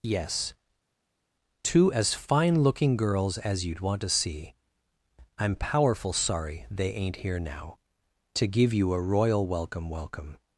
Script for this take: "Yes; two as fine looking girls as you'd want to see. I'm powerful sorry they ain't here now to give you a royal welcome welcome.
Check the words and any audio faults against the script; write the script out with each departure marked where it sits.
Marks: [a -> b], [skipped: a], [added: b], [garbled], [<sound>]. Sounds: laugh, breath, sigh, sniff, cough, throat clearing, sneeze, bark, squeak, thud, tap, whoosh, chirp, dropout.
"Yes; two as fine looking girls as you'd want to see. I'm powerful sorry they ain't here now to give you a royal welcome welcome.